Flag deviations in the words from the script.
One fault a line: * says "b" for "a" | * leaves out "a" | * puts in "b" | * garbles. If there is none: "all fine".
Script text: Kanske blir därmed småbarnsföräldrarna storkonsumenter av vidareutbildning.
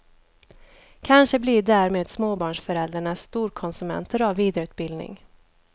all fine